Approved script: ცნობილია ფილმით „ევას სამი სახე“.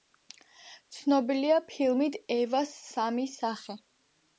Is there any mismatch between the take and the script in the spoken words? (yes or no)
no